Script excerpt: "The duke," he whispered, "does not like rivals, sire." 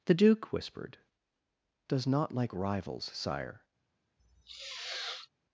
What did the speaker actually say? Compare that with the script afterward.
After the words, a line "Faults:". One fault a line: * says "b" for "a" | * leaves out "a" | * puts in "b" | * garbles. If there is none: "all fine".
"The duke," whispered, "does not like rivals, sire."
Faults:
* leaves out "he"